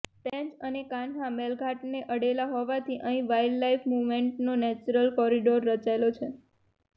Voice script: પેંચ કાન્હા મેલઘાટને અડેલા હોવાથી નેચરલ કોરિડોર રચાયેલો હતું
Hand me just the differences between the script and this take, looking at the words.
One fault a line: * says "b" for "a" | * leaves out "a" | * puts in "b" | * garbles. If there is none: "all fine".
* puts in "અને"
* puts in "અહીં વાઈલ્ડલાઈફ મૂવમેન્ટનો"
* says "છે" for "હતું"